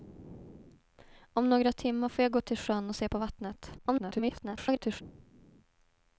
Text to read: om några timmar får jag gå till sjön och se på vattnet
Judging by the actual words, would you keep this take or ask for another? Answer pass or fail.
fail